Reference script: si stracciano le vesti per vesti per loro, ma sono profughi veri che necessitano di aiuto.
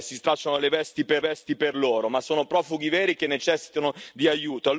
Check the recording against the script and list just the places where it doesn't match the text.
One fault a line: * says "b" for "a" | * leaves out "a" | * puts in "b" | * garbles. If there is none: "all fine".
all fine